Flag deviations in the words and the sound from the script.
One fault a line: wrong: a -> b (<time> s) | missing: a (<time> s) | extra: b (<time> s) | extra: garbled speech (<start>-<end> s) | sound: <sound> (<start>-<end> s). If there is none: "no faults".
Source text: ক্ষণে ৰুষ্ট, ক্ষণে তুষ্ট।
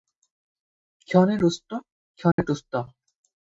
sound: dropout (2.3-2.4 s)